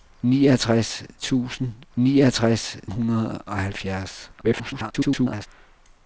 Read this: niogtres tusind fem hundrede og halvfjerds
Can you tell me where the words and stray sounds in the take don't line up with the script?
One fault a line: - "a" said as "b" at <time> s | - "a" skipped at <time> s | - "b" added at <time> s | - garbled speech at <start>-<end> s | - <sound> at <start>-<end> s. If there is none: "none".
- "fem" said as "niogtres" at 1.9 s
- garbled speech at 4.4-5.5 s